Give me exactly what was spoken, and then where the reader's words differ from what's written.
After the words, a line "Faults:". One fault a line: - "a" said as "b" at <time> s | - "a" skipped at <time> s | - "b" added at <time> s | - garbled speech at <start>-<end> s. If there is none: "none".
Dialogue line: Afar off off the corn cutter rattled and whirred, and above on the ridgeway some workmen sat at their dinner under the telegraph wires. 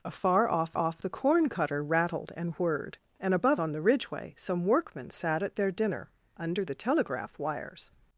Afar off off the corn cutter rattled and whirred, and above on the ridgeway some workmen sat at their dinner under the telegraph wires.
Faults:
none